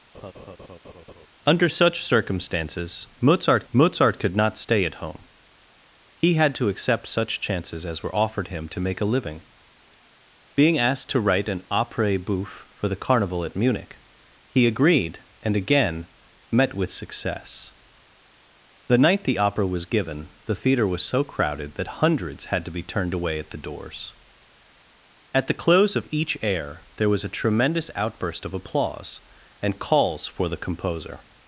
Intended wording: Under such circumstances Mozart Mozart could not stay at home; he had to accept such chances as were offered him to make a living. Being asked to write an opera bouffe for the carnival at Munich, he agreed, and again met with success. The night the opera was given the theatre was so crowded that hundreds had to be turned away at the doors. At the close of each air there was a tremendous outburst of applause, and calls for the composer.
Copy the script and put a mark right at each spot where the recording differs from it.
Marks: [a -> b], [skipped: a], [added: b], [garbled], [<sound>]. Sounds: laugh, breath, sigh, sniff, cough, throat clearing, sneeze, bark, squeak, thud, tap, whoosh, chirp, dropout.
[laugh] Under such circumstances Mozart Mozart could not stay at home; he had to accept such chances as were offered him to make a living. Being asked to write an opera bouffe for the carnival at Munich, he agreed, and again met with success. The night the opera was given the theatre was so crowded that hundreds had to be turned away at the doors. At the close of each air there was a tremendous outburst of applause, and calls for the composer.